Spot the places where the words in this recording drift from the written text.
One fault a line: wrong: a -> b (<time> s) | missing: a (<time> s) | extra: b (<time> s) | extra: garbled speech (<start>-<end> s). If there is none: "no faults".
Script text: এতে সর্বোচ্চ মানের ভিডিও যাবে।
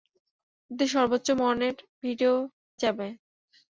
no faults